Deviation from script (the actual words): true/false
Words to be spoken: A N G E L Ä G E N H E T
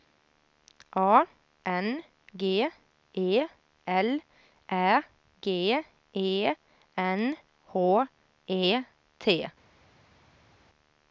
false